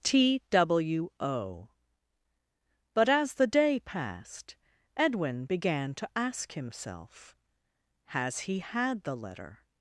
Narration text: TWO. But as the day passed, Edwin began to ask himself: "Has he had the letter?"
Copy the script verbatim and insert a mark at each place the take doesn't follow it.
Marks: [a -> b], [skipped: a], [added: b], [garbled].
TWO. But as the day passed, Edwin began to ask himself: "Has he had the letter?"